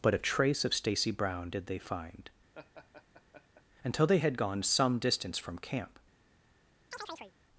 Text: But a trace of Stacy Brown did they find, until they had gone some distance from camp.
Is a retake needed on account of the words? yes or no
no